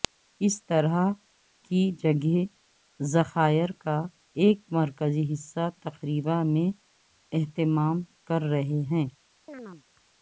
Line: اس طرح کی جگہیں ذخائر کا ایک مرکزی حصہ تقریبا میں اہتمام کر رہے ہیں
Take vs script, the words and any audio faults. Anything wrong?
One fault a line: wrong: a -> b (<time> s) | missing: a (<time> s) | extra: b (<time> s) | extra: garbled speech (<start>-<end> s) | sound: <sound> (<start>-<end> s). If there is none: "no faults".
sound: chirp (9.5-9.8 s)